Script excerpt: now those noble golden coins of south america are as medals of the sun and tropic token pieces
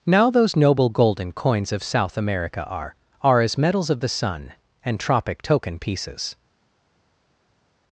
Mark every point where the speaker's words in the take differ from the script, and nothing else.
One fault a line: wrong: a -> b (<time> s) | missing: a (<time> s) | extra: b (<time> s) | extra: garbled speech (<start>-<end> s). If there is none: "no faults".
extra: are (3.2 s)